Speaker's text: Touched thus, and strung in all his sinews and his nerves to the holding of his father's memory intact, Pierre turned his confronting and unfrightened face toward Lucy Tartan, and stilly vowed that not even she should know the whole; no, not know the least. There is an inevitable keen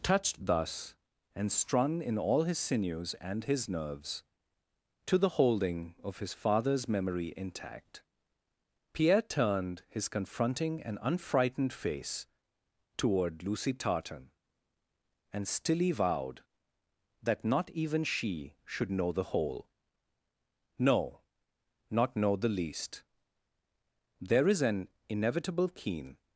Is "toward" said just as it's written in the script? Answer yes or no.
yes